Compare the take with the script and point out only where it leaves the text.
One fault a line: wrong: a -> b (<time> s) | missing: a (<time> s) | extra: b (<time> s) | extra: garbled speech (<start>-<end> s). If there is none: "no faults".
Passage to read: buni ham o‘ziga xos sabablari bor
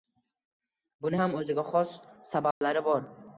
no faults